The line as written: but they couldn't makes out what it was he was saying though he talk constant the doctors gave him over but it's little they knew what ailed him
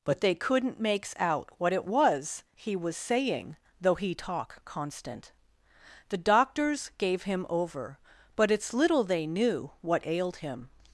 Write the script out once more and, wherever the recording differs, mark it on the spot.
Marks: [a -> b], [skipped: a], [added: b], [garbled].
but they couldn't makes out what it was he was saying though he talk constant the doctors gave him over but it's little they knew what ailed him